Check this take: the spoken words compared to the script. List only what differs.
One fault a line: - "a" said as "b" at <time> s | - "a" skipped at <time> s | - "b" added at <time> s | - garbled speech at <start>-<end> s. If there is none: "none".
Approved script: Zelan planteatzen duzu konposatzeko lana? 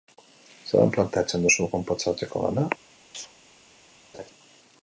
none